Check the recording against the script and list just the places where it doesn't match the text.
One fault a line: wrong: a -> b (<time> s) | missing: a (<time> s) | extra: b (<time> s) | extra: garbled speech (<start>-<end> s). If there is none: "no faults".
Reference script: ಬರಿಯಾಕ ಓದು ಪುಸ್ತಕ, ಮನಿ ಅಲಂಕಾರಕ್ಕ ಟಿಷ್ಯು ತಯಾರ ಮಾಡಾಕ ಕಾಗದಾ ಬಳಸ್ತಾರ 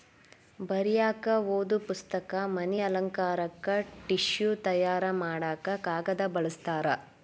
no faults